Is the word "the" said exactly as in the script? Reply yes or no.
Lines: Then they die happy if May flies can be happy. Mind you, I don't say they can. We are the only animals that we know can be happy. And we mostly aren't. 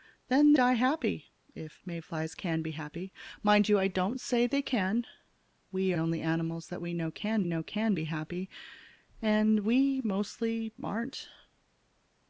no